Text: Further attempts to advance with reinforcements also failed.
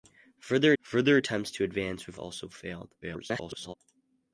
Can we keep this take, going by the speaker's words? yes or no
no